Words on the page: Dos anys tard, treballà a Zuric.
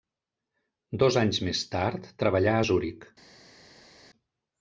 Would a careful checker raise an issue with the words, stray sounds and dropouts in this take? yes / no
yes